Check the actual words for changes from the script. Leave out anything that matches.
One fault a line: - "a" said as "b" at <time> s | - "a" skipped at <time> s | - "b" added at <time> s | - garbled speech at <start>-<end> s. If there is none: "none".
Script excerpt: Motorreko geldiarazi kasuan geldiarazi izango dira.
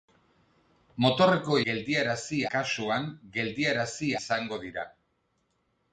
none